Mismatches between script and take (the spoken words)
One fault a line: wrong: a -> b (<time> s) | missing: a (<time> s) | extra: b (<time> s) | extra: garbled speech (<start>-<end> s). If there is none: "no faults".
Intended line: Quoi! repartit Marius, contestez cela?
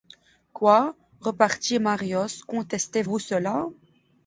extra: vous (3.0 s)